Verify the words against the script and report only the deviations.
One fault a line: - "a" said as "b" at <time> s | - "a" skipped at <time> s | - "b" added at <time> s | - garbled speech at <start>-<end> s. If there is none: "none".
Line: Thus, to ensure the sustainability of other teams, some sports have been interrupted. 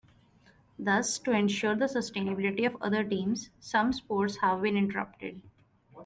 none